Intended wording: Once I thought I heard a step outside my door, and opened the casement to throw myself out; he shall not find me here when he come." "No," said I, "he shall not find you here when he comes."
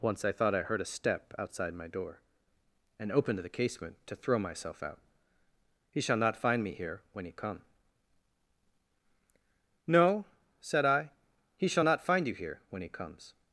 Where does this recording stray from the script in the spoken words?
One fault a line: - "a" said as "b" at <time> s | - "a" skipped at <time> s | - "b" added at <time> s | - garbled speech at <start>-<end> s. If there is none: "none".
none